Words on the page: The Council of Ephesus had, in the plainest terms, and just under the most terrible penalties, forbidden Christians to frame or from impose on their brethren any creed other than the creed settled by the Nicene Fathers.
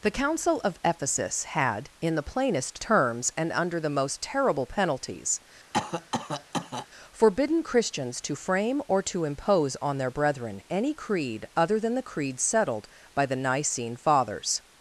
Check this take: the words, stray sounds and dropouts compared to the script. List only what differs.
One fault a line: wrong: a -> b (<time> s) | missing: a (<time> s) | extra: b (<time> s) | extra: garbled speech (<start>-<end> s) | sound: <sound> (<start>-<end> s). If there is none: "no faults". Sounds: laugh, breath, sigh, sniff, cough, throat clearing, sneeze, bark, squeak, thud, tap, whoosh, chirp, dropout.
missing: just (3.5 s)
sound: cough (5.7-6.9 s)
wrong: from -> to (9.0 s)